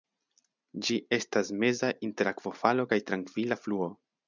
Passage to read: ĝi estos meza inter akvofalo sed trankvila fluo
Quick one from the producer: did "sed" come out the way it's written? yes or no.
no